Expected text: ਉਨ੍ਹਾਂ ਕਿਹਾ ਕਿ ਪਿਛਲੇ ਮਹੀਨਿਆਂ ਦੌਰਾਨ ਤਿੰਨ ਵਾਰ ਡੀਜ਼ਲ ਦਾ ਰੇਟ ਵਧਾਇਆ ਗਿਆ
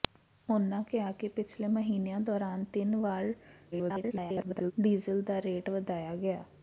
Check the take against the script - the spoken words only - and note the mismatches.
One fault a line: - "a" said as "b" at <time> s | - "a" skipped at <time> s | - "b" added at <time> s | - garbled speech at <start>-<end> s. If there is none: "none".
- garbled speech at 3.7-4.7 s